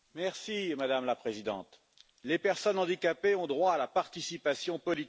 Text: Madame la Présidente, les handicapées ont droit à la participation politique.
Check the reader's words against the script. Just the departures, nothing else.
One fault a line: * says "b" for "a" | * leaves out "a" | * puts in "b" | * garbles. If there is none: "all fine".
* puts in "personnes"